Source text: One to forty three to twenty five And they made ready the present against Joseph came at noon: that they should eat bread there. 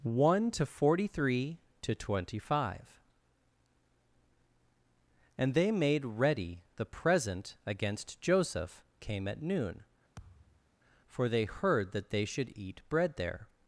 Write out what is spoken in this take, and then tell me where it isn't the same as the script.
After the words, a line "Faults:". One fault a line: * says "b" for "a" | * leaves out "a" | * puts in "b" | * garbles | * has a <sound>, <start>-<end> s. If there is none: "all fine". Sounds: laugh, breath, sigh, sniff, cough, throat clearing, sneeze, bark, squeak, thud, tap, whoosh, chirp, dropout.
One to forty three to twenty five And they made ready the present against Joseph came at noon: for they heard that they should eat bread there.
Faults:
* has a thud, 10.2-10.7 s
* puts in "for they heard"